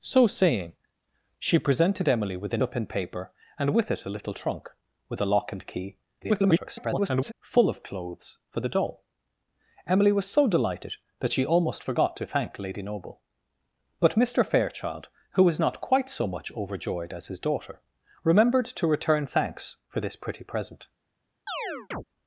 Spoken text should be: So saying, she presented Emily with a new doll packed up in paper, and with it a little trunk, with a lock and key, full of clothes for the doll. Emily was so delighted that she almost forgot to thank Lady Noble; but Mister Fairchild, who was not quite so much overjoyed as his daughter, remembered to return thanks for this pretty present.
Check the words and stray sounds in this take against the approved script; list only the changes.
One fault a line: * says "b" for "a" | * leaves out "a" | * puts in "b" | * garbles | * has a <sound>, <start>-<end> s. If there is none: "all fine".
* leaves out "new doll packed"
* garbles
* has a chirp, 21.5-22.0 s